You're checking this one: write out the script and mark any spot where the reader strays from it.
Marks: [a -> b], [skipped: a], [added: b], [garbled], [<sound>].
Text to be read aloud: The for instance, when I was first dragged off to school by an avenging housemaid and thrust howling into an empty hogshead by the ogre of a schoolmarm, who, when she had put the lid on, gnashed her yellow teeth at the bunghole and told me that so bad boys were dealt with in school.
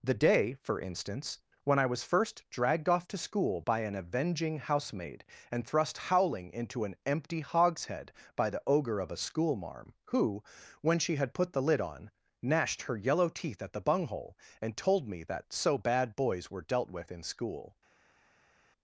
The [added: day] for instance, when I was first dragged off to school by an avenging housemaid and thrust howling into an empty hogshead by the ogre of a schoolmarm, who, when she had put the lid on, gnashed her yellow teeth at the bunghole and told me that so bad boys were dealt with in school.